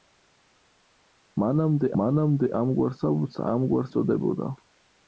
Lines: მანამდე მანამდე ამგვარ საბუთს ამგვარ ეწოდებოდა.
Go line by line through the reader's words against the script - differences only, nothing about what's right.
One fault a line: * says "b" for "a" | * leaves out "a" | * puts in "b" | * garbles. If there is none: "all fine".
all fine